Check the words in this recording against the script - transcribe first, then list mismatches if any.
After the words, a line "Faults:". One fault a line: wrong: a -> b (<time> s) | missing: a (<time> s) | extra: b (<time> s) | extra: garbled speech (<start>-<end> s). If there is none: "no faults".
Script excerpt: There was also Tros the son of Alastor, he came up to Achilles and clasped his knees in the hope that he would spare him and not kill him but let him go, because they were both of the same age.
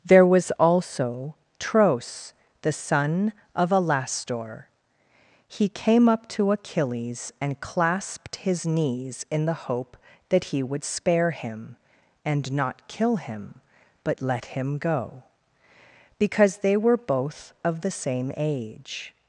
There was also Tros the son of Alastor, he came up to Achilles and clasped his knees in the hope that he would spare him and not kill him but let him go, because they were both of the same age.
Faults:
no faults